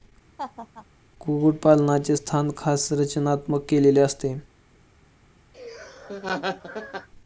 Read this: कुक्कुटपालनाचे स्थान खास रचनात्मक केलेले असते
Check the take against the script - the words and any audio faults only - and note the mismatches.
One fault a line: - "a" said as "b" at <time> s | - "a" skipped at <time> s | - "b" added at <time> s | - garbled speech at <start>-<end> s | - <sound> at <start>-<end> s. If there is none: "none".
- laugh at 0.4-0.9 s
- laugh at 5.5-7.1 s